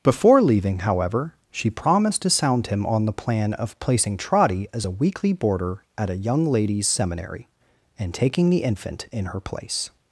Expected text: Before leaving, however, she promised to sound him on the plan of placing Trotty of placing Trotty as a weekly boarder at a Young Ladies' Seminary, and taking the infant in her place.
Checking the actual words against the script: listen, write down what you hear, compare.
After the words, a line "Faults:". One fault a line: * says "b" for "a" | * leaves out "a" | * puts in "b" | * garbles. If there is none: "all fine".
Before leaving, however, she promised to sound him on the plan of placing Trotty as a weekly boarder at a Young Ladies' Seminary, and taking the infant in her place.
Faults:
* leaves out "of placing Trotty"